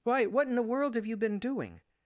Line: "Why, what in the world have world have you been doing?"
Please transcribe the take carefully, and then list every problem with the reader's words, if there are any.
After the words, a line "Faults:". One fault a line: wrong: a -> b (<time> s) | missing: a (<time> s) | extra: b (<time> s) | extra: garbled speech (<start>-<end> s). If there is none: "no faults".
"Why, what in the world have you been doing?"
Faults:
missing: world have (1.1 s)